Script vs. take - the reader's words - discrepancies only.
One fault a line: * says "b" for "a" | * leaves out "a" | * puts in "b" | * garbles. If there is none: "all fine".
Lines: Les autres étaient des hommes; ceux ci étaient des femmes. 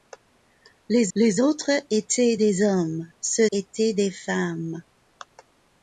* puts in "les"
* leaves out "ci"